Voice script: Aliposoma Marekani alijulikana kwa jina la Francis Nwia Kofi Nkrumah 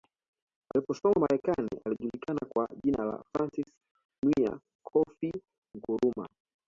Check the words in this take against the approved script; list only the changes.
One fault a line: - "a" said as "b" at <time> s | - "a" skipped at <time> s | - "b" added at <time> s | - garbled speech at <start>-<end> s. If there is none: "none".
none